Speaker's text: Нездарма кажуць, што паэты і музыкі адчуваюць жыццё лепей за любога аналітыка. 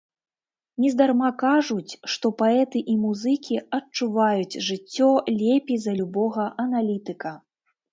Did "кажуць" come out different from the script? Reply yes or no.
no